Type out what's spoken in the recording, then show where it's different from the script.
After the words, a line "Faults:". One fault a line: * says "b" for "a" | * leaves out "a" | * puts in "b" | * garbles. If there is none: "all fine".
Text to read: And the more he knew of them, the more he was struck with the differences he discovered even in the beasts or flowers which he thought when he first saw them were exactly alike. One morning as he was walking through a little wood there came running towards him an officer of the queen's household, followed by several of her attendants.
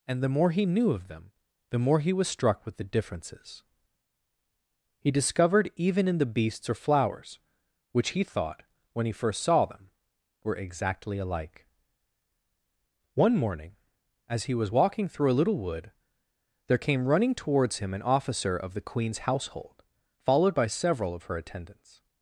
And the more he knew of them, the more he was struck with the differences he discovered even in the beasts or flowers which he thought when he first saw them were exactly alike. One morning as he was walking through a little wood there came running towards him an officer of the queen's household, followed by several of her attendants.
Faults:
all fine